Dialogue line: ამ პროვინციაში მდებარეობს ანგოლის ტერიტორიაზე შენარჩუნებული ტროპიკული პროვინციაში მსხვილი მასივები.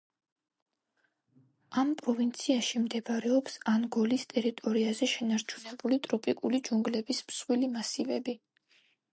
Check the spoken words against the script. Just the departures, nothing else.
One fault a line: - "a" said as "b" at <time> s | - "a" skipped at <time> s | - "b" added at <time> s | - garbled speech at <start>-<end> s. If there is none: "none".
- "პროვინციაში" said as "ჯუნგლების" at 6.7 s